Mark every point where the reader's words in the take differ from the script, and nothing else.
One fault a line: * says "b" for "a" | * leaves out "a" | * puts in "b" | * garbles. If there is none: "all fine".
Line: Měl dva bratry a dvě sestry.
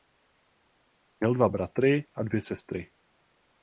all fine